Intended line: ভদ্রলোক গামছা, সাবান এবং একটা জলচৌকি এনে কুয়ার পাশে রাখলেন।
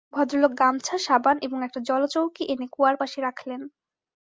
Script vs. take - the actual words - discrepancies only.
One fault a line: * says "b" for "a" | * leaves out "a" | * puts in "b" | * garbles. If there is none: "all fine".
all fine